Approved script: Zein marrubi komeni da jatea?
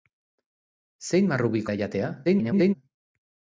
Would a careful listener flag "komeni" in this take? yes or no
yes